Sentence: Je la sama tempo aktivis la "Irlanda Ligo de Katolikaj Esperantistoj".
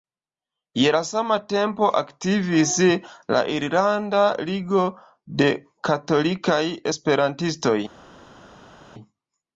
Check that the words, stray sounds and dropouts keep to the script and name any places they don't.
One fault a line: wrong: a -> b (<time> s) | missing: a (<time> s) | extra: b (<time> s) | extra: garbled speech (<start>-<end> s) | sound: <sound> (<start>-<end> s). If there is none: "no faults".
no faults